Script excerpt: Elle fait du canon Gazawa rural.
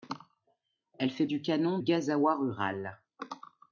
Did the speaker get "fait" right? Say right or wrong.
right